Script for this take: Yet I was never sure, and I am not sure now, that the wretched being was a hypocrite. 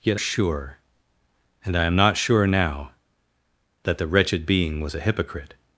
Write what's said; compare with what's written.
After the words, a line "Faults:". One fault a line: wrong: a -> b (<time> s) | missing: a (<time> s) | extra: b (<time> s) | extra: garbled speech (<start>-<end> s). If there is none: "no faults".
Yet sure, and I am not sure now, that the wretched being was a hypocrite.
Faults:
missing: I was never (0.2 s)